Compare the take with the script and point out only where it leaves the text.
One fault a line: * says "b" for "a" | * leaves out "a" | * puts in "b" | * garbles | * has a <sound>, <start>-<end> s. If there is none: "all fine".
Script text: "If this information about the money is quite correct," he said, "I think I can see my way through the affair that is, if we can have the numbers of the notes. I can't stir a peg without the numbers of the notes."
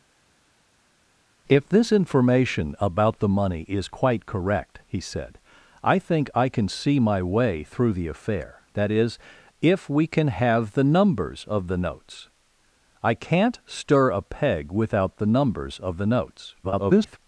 * garbles